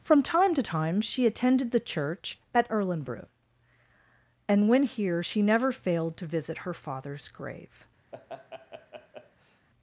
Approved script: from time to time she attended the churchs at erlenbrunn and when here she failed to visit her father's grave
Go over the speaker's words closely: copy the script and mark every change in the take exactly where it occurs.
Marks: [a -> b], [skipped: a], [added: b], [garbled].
from time to time she attended the [churchs -> church] at erlenbrunn and when here she [added: never] failed to visit her father's grave